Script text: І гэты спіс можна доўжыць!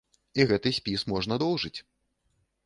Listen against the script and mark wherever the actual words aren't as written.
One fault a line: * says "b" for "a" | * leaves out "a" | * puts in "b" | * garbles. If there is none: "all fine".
all fine